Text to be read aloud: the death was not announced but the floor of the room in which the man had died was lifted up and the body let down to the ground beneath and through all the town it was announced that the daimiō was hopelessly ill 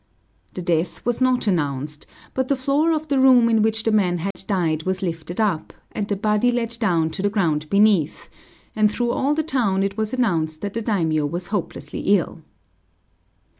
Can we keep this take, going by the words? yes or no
yes